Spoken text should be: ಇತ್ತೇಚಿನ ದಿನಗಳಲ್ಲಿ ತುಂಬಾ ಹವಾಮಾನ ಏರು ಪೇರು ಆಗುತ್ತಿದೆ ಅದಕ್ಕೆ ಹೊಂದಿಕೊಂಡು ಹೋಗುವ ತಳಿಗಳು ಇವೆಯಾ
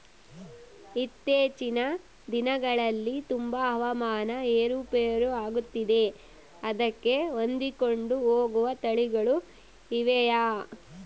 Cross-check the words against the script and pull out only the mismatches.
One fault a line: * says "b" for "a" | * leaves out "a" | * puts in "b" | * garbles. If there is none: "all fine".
all fine